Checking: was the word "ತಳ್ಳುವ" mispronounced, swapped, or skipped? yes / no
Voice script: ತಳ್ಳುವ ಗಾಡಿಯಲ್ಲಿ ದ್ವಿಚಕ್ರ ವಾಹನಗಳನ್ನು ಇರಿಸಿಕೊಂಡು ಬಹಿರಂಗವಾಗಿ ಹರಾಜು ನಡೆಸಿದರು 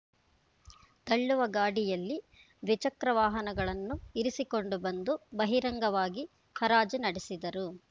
no